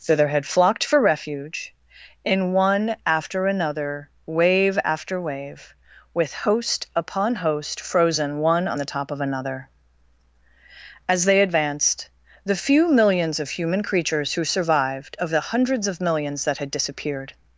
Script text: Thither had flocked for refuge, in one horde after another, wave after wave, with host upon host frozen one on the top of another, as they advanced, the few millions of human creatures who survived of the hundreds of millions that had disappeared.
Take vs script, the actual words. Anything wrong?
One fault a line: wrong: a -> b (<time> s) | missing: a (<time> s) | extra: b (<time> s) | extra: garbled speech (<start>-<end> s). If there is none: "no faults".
missing: horde (3.0 s)